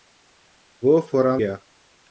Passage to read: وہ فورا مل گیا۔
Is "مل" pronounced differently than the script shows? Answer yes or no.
yes